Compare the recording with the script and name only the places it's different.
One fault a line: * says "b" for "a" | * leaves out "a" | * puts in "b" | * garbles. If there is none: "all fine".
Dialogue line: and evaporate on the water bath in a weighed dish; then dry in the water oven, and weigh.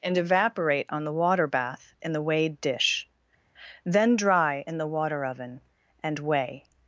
* says "the" for "a"